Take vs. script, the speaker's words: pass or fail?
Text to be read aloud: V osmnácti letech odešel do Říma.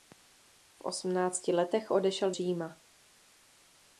fail